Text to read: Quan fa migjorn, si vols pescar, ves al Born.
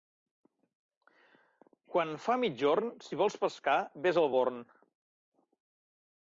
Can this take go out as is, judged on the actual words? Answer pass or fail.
pass